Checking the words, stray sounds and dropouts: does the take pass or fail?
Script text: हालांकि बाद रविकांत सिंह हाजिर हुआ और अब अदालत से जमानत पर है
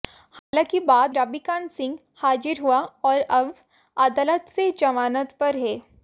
fail